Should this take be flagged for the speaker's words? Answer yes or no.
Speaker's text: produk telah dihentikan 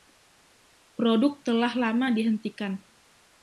yes